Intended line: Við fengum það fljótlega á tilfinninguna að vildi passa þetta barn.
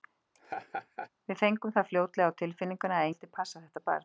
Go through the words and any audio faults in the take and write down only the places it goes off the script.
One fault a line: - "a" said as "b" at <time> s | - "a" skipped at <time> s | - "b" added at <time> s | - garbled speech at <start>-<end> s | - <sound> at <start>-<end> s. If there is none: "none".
- laugh at 0.3-1.1 s